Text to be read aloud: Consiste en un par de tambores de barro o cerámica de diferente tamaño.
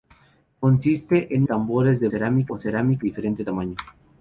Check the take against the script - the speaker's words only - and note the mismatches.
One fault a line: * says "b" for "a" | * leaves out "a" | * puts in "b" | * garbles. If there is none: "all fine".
* leaves out "un par de"
* says "cerámica" for "barro"
* leaves out "de"